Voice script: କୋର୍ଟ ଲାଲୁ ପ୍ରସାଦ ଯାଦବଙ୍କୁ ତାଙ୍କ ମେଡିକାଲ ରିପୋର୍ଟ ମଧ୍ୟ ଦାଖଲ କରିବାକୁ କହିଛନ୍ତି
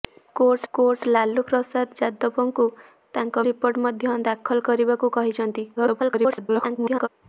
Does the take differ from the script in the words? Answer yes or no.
yes